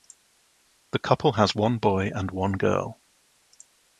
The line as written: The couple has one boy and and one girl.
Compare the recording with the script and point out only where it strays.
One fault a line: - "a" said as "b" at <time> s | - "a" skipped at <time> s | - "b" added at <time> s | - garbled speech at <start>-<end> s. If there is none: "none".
- "and" skipped at 2.3 s